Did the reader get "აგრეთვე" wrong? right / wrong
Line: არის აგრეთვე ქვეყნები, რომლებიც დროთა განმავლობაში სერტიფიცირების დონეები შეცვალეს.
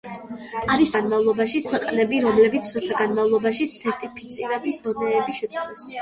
wrong